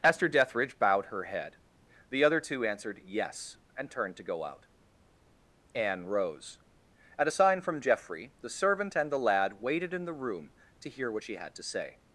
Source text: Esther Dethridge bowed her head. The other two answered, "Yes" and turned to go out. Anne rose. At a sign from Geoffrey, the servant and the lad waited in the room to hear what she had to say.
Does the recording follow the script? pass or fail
pass